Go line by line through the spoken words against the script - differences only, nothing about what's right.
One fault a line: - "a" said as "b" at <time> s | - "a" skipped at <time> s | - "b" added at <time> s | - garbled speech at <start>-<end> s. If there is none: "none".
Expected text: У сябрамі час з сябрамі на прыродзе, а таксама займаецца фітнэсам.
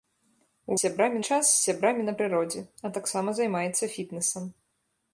none